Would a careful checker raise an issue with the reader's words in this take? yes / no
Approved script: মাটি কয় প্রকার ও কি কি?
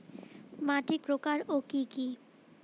yes